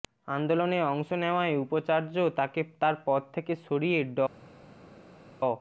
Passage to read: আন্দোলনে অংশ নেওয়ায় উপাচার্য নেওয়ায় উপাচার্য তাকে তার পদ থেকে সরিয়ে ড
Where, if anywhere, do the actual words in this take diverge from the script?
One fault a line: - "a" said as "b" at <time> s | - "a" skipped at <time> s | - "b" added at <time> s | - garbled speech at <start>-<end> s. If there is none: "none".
- "নেওয়ায় উপাচার্য" skipped at 2.1 s